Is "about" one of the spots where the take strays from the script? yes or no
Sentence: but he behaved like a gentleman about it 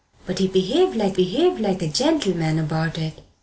no